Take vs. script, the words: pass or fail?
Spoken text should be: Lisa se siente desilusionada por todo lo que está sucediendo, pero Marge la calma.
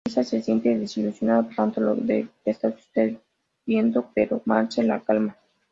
pass